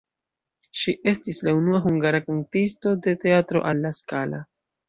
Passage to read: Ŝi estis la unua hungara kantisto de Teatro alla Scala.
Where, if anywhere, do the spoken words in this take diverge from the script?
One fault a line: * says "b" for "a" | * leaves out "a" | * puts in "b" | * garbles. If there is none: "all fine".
all fine